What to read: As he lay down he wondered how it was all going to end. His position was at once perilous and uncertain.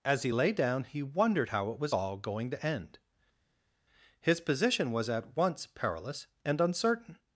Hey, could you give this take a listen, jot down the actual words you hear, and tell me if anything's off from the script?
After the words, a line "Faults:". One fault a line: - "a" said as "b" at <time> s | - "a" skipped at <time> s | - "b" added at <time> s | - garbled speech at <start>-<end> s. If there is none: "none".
As he lay down he wondered how it was all going to end. His position was at once perilous and uncertain.
Faults:
none